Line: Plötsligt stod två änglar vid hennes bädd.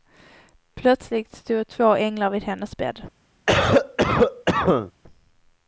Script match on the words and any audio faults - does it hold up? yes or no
no